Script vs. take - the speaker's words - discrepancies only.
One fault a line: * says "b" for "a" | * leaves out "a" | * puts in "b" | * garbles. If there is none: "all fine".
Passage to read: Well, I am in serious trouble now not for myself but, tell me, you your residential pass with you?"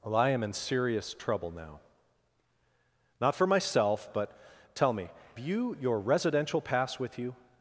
all fine